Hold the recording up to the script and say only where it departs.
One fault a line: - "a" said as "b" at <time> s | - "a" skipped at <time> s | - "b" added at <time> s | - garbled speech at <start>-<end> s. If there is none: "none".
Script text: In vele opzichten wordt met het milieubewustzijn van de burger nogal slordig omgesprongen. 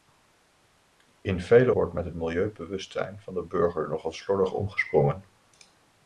- "opzichten" skipped at 1.7 s